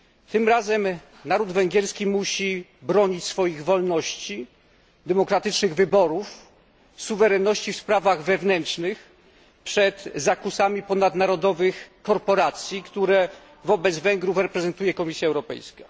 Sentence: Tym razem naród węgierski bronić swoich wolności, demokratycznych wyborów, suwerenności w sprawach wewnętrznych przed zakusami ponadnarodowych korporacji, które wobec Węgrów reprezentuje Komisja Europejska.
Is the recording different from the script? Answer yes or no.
yes